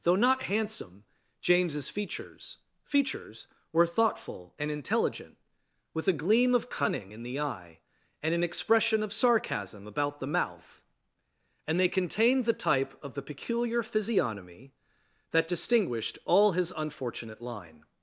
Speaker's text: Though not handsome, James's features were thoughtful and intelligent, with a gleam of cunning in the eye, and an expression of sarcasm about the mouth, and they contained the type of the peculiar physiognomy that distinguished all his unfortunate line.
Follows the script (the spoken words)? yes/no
no